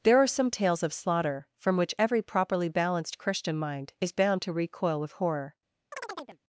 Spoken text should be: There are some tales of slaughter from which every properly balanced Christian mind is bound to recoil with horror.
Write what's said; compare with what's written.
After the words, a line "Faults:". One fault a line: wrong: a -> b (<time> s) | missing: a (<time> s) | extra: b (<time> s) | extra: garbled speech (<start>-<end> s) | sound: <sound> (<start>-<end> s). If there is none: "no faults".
There are some tales of slaughter from which every properly balanced Christian mind is bound to recoil with horror.
Faults:
sound: chirp (5.9-6.4 s)